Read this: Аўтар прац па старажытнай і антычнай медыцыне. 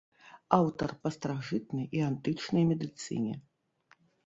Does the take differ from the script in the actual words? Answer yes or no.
yes